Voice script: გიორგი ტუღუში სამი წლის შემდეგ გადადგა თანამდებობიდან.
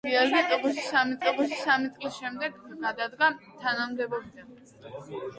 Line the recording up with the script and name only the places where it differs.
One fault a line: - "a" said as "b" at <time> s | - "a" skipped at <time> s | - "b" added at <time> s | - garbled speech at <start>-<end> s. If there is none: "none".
- "ტუღუში სამი" added at 1.3 s